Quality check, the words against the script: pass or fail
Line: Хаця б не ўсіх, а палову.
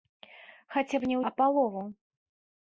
fail